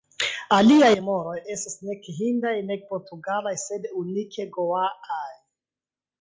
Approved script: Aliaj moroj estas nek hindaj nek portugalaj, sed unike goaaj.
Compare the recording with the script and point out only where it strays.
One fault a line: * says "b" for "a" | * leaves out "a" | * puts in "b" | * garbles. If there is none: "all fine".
all fine